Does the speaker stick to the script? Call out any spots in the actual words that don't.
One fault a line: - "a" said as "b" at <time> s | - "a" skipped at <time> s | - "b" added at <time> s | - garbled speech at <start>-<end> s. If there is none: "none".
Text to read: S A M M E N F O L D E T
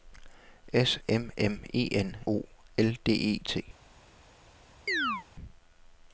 - "A" skipped at 1.0 s
- "F" skipped at 2.2 s